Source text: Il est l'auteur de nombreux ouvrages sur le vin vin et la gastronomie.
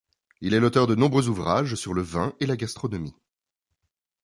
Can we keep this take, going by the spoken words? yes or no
no